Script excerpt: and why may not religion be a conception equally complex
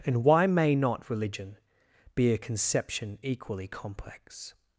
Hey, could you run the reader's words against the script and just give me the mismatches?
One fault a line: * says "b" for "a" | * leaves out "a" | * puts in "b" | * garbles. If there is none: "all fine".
all fine